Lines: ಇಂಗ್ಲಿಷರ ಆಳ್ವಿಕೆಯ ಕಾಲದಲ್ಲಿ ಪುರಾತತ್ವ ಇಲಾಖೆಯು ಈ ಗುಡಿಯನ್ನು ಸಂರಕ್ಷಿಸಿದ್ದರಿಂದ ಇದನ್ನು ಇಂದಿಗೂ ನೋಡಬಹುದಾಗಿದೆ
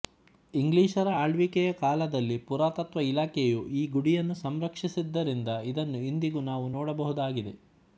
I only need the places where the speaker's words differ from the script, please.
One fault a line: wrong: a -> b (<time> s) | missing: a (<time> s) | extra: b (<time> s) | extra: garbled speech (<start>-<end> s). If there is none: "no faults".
extra: ನಾವು (6.5 s)